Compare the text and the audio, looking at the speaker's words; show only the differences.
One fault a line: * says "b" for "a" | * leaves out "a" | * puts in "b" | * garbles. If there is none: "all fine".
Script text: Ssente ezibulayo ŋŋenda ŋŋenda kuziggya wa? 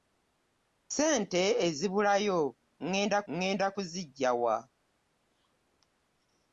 all fine